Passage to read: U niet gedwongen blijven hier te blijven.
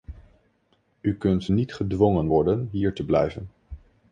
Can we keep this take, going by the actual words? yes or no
no